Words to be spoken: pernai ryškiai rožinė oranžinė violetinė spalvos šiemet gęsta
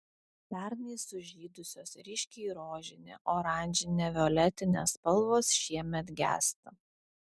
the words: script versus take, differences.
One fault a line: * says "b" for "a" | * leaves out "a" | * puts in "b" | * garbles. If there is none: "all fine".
* puts in "sužydusios"